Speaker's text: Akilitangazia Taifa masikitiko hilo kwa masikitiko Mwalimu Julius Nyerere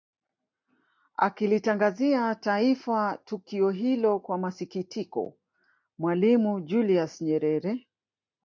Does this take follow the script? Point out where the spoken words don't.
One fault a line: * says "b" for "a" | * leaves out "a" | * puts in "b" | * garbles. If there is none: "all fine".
* says "tukio" for "masikitiko"